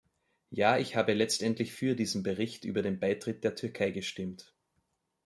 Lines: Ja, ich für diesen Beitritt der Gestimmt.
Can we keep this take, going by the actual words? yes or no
no